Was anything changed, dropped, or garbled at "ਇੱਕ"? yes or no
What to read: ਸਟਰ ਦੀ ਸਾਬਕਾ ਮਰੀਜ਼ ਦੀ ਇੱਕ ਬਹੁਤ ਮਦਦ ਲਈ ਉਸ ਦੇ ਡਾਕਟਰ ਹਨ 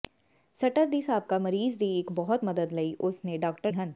no